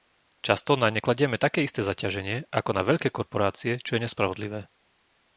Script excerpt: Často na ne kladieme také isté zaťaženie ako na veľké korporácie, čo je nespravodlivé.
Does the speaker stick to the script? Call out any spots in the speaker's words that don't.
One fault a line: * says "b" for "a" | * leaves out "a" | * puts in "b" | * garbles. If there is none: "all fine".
all fine